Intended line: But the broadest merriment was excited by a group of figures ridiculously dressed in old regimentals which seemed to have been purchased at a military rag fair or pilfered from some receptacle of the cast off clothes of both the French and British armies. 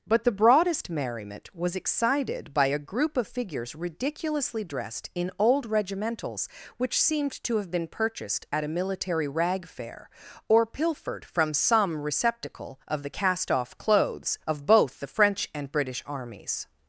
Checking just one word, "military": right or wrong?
right